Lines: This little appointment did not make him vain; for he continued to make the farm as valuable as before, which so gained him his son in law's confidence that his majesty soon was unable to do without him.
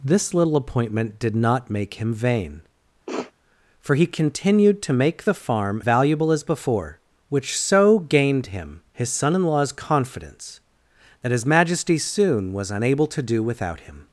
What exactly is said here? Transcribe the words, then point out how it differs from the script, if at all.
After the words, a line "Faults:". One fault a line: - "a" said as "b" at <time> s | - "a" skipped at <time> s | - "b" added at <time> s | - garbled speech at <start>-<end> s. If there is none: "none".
This little appointment did not make him vain; for he continued to make the farm valuable as before, which so gained him his son in law's confidence that his majesty soon was unable to do without him.
Faults:
- "as" skipped at 5.8 s